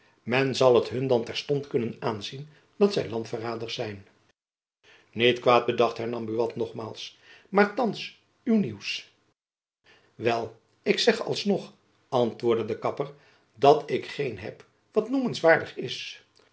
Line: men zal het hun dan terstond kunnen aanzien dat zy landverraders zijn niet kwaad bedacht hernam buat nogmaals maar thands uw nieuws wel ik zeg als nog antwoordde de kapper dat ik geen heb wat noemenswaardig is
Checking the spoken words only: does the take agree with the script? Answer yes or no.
yes